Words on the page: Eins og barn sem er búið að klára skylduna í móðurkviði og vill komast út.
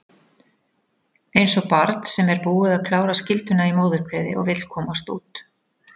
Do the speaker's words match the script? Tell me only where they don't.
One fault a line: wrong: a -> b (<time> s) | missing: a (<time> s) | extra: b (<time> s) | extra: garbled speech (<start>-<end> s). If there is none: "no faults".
no faults